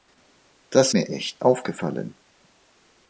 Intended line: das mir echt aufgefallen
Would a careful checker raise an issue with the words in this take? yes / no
no